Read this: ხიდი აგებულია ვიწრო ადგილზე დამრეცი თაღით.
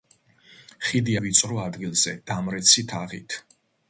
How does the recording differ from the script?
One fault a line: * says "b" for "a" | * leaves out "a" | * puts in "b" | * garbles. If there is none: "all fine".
* leaves out "აგებულია"